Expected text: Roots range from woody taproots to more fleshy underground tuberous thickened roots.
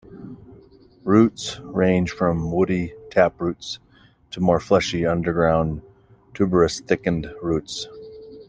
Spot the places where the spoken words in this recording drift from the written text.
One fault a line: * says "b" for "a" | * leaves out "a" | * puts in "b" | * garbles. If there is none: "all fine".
all fine